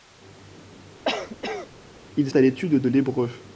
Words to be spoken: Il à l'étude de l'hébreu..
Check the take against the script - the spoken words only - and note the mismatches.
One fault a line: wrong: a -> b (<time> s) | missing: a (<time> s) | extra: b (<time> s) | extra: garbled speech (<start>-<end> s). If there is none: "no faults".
no faults